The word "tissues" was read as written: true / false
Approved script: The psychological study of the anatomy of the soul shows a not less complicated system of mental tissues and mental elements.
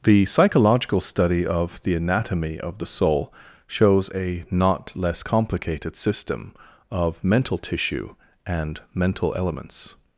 false